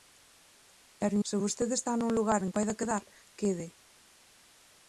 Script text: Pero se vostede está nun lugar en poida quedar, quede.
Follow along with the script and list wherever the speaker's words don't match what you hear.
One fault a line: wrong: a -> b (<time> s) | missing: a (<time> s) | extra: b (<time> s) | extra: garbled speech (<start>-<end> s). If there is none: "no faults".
no faults